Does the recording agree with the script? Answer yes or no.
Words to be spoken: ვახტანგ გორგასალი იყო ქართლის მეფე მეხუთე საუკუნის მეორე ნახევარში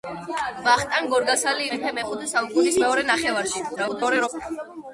no